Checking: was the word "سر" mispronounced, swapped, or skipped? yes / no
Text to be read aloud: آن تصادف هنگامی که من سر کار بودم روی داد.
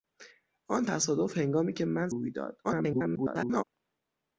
yes